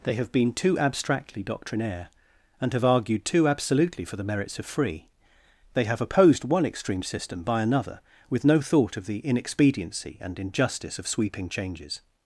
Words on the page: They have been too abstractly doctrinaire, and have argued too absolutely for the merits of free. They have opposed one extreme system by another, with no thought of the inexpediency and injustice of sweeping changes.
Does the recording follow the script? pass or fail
pass